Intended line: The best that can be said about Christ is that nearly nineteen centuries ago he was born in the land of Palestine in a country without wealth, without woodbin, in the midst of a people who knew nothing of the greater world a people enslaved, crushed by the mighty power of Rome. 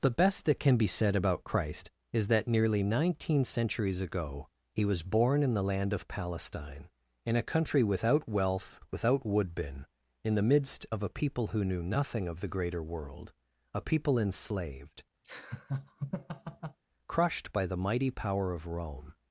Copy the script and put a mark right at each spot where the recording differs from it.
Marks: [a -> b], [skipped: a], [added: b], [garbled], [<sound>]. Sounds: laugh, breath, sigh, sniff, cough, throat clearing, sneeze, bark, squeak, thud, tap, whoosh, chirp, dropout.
The best that can be said about Christ is that nearly nineteen centuries ago he was born in the land of Palestine in a country without wealth, without woodbin, in the midst of a people who knew nothing of the greater world a people enslaved, [laugh] crushed by the mighty power of Rome.